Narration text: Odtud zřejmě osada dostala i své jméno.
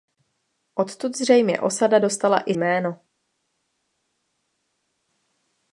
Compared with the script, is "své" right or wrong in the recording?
wrong